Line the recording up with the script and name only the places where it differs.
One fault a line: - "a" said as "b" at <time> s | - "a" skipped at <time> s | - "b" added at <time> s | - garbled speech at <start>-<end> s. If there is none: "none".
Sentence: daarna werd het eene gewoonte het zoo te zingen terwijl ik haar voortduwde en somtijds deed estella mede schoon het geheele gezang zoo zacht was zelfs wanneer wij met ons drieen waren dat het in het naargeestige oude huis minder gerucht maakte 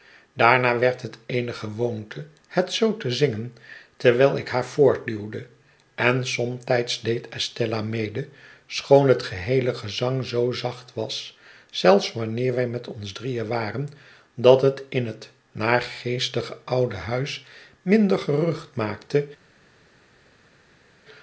none